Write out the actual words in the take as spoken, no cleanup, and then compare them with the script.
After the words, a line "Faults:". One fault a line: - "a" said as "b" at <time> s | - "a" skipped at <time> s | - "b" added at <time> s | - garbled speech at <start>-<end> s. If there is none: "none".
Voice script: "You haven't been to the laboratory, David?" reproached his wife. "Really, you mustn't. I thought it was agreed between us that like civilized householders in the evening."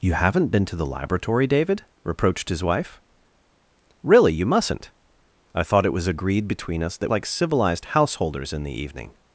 "You haven't been to the laboratory, David?" reproached his wife. "Really, you mustn't. I thought it was agreed between us that like civilized householders in the evening."
Faults:
none